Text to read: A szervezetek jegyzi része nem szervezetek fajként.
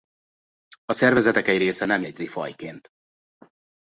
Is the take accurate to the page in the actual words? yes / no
no